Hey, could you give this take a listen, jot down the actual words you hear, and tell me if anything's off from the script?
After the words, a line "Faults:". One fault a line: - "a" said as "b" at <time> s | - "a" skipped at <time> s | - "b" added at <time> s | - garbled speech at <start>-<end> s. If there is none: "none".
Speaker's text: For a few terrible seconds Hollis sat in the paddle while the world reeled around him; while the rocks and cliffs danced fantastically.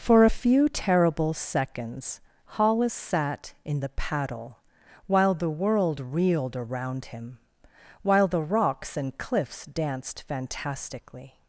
For a few terrible seconds Hollis sat in the paddle while the world reeled around him; while the rocks and cliffs danced fantastically.
Faults:
none